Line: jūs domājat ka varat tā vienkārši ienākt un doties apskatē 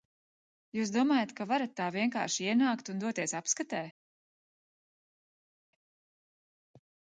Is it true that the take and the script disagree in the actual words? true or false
false